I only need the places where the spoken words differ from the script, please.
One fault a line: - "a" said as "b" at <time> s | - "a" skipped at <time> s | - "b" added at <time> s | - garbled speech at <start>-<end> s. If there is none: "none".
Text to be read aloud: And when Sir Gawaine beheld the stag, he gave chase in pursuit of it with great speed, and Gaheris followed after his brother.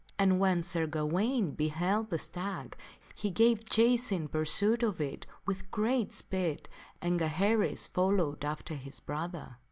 none